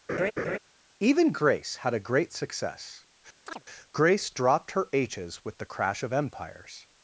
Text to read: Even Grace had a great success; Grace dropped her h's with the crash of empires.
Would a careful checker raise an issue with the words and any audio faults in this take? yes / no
yes